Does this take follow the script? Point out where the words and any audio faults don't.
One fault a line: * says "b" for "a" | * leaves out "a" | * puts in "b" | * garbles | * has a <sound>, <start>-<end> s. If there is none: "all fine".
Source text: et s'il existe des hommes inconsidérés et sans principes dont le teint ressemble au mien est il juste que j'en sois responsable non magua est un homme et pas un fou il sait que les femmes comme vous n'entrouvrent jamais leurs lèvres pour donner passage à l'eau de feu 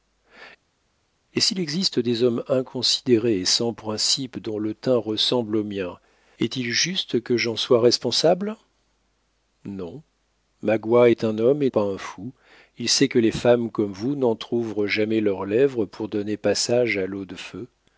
all fine